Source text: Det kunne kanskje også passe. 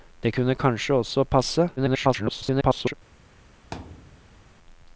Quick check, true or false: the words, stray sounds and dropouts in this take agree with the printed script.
false